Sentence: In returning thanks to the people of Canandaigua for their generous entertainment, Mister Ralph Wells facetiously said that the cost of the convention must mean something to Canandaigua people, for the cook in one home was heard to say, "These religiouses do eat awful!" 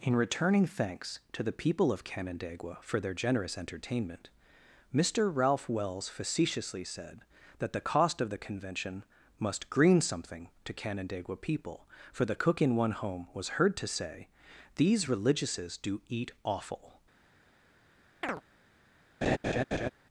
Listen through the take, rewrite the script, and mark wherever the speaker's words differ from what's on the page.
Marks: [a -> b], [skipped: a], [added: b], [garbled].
In returning thanks to the people of Canandaigua for their generous entertainment, Mister Ralph Wells facetiously said that the cost of the convention must [mean -> green] something to Canandaigua people, for the cook in one home was heard to say, "These religiouses do eat awful!"